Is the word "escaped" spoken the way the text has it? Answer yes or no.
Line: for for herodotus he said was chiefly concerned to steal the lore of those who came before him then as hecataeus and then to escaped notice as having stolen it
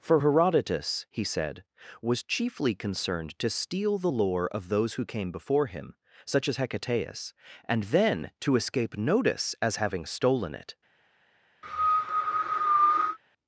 no